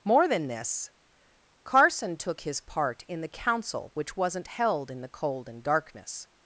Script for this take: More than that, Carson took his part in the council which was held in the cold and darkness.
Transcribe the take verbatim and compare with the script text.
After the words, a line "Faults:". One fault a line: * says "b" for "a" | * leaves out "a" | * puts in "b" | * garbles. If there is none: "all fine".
More than this, Carson took his part in the council which wasn't held in the cold and darkness.
Faults:
* says "this" for "that"
* says "wasn't" for "was"